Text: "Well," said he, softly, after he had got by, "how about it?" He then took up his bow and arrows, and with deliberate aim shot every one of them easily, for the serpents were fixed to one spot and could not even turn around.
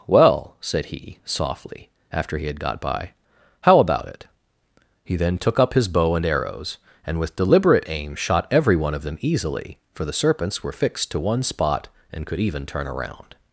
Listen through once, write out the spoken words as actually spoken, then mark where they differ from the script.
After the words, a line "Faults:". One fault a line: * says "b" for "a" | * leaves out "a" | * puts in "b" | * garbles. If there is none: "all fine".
"Well," said he, softly, after he had got by, "how about it?" He then took up his bow and arrows, and with deliberate aim shot every one of them easily, for the serpents were fixed to one spot and could even turn around.
Faults:
* leaves out "not"